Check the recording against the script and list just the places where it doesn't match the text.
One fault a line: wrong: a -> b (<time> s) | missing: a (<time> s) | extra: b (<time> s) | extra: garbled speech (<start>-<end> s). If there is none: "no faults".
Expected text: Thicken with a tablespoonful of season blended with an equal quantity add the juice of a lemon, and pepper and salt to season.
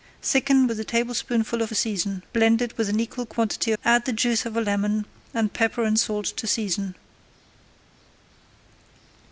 no faults